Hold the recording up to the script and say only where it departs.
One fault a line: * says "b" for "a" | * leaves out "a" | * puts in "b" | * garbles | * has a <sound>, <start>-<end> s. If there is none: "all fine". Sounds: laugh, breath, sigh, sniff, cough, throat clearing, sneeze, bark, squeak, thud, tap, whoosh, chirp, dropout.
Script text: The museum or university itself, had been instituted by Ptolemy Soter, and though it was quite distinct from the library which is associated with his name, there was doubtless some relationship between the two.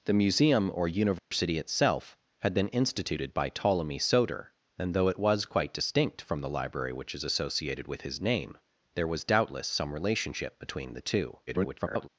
* has a dropout, 1.2-1.3 s
* garbles